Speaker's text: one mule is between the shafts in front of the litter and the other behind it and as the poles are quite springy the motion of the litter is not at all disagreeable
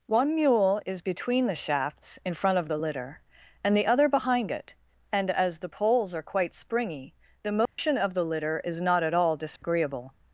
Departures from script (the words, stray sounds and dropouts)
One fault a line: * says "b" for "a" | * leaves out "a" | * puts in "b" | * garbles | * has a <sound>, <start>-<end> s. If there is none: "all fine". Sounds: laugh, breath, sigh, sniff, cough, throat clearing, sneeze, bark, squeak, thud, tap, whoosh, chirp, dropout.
* has a dropout, 7.7-7.8 s
* has a dropout, 9.6-9.6 s